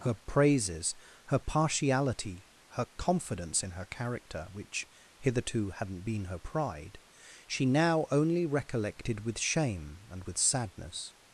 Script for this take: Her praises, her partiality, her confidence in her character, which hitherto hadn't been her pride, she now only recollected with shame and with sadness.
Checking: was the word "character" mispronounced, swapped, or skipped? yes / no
no